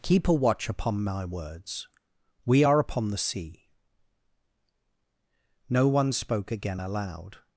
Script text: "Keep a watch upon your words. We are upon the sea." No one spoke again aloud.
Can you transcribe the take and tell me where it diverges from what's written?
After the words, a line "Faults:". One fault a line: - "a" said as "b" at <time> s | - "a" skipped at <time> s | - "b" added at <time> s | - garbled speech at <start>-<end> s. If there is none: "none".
"Keep a watch upon my words. We are upon the sea." No one spoke again aloud.
Faults:
- "your" said as "my" at 1.0 s